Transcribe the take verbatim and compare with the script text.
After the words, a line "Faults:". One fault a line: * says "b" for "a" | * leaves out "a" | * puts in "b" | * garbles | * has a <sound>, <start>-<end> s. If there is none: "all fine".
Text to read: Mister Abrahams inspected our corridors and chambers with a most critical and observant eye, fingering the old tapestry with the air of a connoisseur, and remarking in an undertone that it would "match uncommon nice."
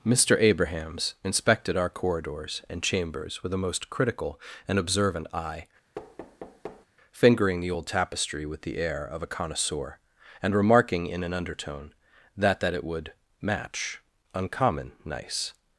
Mister Abrahams inspected our corridors and chambers with a most critical and observant eye, fingering the old tapestry with the air of a connoisseur, and remarking in an undertone that that it would "match uncommon nice."
Faults:
* has a thud, 5.9-6.9 s
* puts in "that"